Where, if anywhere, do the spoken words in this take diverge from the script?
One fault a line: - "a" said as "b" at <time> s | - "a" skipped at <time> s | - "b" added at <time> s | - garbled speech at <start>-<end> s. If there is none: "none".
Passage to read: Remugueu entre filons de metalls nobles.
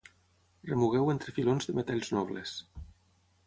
none